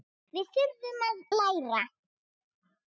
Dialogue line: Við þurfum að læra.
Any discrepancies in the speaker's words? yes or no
no